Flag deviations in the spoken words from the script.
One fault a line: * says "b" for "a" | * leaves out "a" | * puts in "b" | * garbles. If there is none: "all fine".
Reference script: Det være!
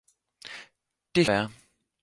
all fine